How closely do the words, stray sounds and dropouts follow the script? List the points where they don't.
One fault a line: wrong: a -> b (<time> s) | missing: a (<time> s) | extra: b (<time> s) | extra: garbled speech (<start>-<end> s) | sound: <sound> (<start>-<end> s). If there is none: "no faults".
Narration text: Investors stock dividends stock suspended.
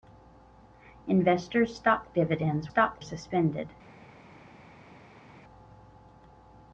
no faults